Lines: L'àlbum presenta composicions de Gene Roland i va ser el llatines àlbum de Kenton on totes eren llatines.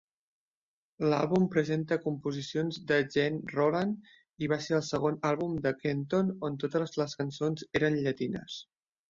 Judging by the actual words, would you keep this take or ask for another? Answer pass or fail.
fail